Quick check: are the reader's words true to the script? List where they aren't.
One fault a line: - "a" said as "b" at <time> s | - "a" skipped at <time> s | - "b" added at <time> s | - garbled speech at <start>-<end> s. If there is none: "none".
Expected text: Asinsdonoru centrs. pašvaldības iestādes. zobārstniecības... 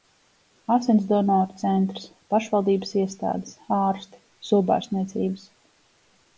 - "ārsti" added at 3.8 s